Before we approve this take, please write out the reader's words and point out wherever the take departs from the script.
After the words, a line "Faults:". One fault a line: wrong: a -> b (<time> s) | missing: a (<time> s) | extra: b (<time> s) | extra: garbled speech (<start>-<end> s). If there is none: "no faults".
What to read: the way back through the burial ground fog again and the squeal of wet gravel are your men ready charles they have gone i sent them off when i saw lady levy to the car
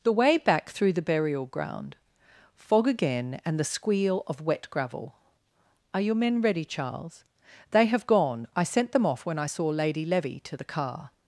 the way back through the burial ground fog again and the squeal of wet gravel are your men ready charles they have gone i sent them off when i saw lady levy to the car
Faults:
no faults